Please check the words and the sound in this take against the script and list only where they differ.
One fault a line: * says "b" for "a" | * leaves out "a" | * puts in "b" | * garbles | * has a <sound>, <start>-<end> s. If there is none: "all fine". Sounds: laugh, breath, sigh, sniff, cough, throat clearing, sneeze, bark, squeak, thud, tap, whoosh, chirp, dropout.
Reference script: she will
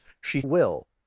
all fine